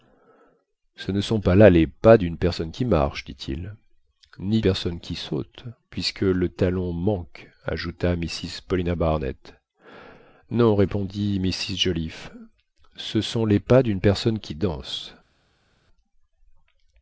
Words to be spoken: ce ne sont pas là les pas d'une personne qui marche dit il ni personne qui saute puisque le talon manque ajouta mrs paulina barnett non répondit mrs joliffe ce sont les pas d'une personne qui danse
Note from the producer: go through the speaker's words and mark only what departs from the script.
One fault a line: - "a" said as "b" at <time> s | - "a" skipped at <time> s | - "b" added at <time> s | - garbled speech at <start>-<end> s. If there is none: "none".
none